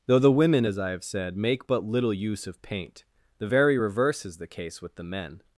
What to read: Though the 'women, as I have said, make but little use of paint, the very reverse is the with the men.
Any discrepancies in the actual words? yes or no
yes